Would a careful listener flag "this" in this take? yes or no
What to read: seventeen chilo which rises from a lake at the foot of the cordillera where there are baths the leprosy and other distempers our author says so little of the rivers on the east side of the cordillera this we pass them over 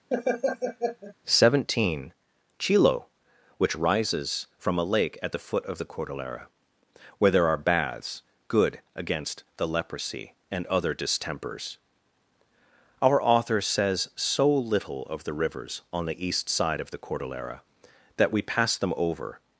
yes